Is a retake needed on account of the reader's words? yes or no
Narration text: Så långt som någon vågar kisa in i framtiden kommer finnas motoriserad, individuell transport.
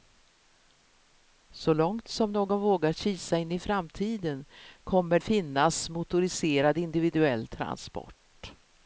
no